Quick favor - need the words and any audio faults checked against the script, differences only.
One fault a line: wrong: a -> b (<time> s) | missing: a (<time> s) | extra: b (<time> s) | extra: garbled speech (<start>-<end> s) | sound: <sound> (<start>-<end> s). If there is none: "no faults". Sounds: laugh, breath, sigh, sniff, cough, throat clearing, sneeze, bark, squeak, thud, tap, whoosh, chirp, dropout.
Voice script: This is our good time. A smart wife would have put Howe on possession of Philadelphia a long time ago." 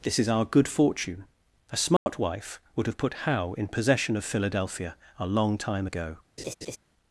wrong: time -> fortune (0.7 s)
sound: dropout (2.0-2.1 s)
wrong: on -> in (3.5 s)
sound: laugh (6.4-6.8 s)